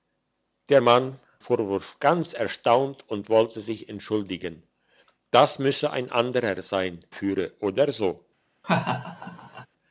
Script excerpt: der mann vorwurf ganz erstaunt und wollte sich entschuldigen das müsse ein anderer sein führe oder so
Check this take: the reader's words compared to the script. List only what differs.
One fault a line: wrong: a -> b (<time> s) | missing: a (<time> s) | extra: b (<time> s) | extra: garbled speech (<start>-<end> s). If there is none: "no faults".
no faults